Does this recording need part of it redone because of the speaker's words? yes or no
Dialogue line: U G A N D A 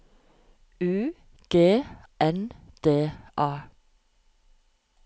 yes